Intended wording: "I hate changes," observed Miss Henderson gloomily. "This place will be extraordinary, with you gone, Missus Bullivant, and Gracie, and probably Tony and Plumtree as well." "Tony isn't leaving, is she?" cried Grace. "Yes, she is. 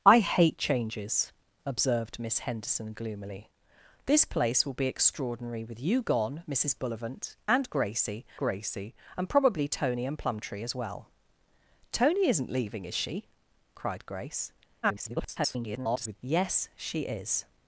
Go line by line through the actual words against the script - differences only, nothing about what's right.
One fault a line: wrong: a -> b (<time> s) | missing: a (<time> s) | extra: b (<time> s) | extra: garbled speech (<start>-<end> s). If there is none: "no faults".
extra: Gracie (8.4 s)
extra: garbled speech (14.8-16.2 s)